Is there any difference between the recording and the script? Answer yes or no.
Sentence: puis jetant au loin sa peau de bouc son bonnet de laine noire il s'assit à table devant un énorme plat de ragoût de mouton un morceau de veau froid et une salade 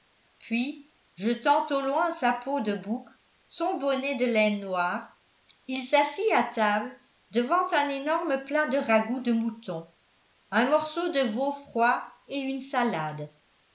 no